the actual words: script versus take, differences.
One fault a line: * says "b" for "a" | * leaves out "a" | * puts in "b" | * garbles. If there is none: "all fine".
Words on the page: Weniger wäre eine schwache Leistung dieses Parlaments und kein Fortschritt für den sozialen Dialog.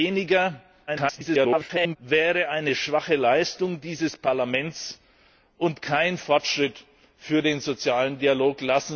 * garbles